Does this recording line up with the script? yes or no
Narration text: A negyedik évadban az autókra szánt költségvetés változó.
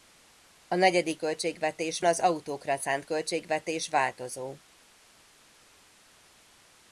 no